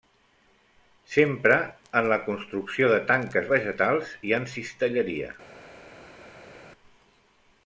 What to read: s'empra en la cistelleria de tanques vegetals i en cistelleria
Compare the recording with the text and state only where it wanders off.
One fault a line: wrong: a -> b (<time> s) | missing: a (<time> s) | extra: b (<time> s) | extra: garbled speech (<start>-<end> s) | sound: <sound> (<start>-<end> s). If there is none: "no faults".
wrong: cistelleria -> construcció (2.3 s)